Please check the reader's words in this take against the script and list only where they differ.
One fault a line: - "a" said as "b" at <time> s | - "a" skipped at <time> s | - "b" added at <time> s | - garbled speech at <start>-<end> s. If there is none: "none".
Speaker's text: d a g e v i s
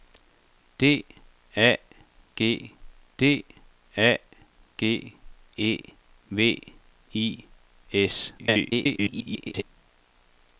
- "d a g" added at 3.2 s
- garbled speech at 8.4-9.6 s